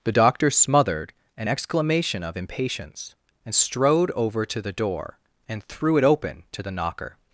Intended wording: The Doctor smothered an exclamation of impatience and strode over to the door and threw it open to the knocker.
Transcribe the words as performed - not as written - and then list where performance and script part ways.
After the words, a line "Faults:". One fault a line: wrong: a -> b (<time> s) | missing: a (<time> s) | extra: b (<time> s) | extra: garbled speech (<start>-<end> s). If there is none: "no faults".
The Doctor smothered an exclamation of impatience and strode over to the door and threw it open to the knocker.
Faults:
no faults